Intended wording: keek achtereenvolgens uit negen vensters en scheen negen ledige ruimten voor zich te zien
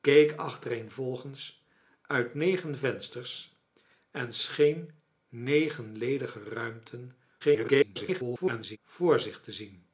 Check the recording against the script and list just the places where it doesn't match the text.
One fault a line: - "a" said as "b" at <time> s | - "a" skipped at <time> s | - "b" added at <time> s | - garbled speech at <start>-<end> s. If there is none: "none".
- garbled speech at 7.4-8.8 s